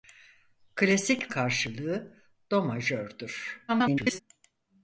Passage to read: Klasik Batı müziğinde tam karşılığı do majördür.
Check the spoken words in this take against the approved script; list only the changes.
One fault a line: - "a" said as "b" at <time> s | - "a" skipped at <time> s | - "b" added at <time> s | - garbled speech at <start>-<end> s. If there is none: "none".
- "Batı müziğinde tam" skipped at 1.3 s
- garbled speech at 3.7-4.2 s